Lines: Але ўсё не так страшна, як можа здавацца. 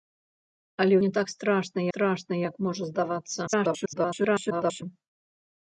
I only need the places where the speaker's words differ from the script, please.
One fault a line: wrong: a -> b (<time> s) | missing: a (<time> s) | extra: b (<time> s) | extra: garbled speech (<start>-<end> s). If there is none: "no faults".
missing: ўсё (0.9 s)
extra: страшна (1.9 s)
extra: garbled speech (3.5-4.8 s)